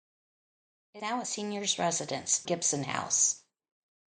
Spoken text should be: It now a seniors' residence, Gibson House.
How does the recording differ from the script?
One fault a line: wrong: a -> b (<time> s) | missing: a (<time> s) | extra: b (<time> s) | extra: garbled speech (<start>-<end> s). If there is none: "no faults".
no faults